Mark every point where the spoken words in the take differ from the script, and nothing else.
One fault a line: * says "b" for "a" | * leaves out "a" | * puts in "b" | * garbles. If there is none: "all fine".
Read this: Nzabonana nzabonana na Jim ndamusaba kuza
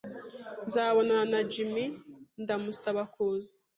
* leaves out "nzabonana"